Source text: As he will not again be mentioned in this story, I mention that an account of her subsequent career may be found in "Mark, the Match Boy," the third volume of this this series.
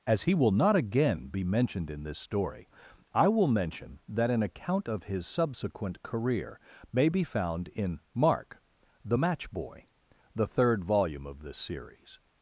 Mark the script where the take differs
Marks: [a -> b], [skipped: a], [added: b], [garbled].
As he will not again be mentioned in this story, I [added: will] mention that an account of [her -> his] subsequent career may be found in "Mark, the Match Boy," the third volume of this [skipped: this] series.